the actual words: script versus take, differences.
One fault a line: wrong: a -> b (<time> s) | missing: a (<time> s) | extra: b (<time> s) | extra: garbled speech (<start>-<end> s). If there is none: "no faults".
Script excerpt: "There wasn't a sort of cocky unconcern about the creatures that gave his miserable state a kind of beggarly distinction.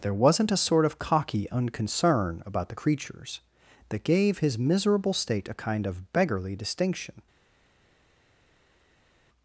no faults